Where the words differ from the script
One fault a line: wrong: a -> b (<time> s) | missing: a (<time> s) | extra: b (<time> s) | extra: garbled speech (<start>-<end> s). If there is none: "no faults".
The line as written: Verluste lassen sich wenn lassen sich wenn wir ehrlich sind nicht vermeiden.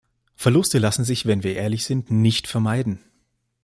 missing: lassen sich wenn (1.4 s)